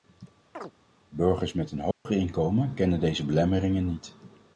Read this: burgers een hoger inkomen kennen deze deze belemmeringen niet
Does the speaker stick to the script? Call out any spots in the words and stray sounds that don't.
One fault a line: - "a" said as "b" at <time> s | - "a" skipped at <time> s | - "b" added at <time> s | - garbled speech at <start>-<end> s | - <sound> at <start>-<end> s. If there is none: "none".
- chirp at 0.5-0.7 s
- "met" added at 1.5 s
- dropout at 1.9-2.1 s
- "deze" skipped at 3.3 s